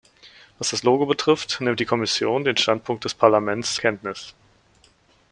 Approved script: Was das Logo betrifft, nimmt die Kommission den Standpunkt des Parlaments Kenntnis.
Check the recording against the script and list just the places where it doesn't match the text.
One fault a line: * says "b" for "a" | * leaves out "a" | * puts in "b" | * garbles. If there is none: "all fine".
all fine